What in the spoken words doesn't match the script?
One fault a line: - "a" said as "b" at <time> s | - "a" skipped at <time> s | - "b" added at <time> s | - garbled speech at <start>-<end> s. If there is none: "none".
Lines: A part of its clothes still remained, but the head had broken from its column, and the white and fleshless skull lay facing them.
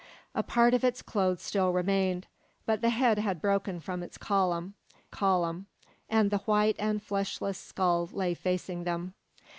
- "column" added at 5.1 s